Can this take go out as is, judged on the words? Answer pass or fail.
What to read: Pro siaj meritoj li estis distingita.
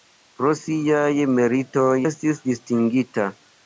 fail